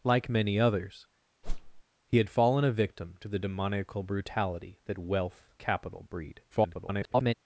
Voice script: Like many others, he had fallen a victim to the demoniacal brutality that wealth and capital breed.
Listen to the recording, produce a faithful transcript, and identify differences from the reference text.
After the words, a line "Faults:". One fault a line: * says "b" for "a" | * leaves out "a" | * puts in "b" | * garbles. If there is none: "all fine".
Like many others, he had fallen a victim to the demoniacal brutality that wealth capital breed. [garbled]
Faults:
* leaves out "and"
* garbles